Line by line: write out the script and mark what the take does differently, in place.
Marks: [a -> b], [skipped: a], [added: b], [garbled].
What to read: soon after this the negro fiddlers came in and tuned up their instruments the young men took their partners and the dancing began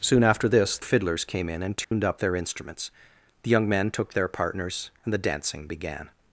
soon after this [skipped: the negro] fiddlers came in and tuned up their instruments the young men took their partners and the dancing began